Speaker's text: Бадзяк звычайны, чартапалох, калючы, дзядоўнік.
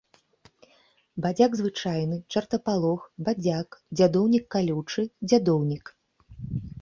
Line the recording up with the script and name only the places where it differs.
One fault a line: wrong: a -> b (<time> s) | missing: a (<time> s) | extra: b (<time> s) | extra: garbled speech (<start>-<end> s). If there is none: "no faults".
extra: бадзяк дзядоўнік (3.3 s)